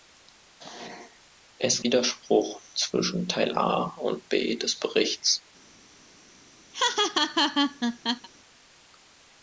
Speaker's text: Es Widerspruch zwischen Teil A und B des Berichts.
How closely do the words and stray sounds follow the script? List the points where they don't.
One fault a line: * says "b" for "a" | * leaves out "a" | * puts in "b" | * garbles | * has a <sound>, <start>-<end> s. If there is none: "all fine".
* has a laugh, 6.7-8.3 s